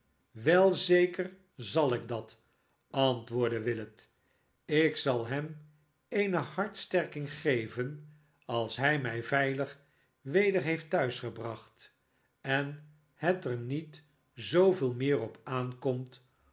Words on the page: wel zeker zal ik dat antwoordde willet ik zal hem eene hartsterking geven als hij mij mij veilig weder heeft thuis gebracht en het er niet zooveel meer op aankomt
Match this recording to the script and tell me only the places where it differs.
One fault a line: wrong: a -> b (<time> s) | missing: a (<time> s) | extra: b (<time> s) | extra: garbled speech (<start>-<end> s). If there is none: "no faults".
missing: mij (9.2 s)